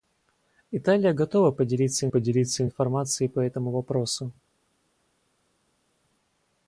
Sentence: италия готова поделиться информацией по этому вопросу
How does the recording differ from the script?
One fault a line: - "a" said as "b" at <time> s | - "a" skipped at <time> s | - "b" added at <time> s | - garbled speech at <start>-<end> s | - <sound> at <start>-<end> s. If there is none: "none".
- "поделиться" added at 2.1 s